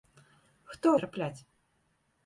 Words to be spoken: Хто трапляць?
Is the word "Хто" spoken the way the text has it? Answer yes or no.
yes